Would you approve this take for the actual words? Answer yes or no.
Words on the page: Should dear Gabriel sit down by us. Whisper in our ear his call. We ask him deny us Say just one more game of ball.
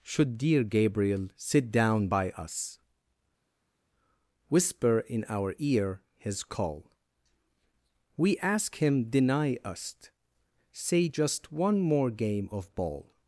yes